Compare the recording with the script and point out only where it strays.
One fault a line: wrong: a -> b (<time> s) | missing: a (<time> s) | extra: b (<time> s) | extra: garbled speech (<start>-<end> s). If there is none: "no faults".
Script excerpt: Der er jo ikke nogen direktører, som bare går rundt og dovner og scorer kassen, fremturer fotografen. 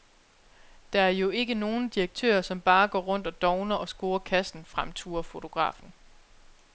no faults